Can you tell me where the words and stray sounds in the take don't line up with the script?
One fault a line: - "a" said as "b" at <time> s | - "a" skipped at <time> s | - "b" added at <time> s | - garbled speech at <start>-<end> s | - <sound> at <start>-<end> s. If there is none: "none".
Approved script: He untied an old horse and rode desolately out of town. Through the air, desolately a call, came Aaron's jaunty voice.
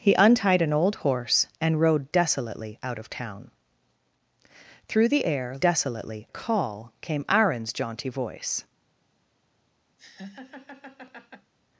- laugh at 10.0-11.5 s